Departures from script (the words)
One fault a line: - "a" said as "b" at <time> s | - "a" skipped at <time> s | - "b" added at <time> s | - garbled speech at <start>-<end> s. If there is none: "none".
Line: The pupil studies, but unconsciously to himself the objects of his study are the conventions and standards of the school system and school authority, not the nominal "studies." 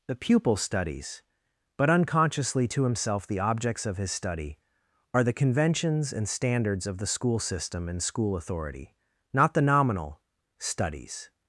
none